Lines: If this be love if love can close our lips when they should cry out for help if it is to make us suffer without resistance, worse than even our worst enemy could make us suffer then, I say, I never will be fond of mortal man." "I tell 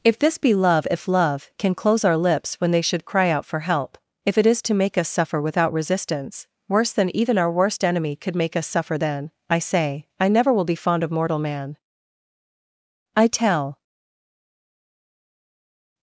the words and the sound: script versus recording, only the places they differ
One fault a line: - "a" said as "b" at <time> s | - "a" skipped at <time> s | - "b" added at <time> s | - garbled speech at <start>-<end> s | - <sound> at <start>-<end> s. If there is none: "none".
none